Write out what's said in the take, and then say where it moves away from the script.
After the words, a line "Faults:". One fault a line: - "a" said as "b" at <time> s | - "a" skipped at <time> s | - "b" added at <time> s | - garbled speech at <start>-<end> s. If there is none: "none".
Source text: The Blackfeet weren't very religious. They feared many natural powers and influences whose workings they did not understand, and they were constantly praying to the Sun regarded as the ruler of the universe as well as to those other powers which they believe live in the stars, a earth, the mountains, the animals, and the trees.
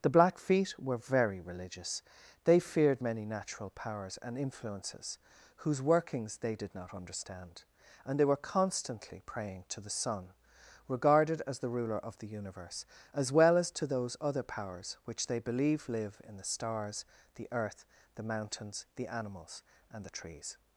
The Blackfeet were very religious. They feared many natural powers and influences whose workings they did not understand, and they were constantly praying to the Sun regarded as the ruler of the universe as well as to those other powers which they believe live in the stars, the earth, the mountains, the animals, and the trees.
Faults:
- "weren't" said as "were" at 0.8 s
- "a" said as "the" at 17.3 s